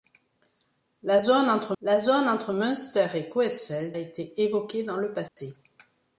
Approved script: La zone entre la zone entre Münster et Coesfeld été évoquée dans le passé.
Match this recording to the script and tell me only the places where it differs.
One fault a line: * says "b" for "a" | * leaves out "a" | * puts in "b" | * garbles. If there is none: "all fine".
all fine